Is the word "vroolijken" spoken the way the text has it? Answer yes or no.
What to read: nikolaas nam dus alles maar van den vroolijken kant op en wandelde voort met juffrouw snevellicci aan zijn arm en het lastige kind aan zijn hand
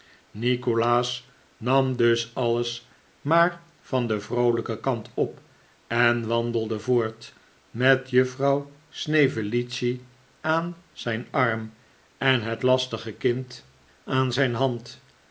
yes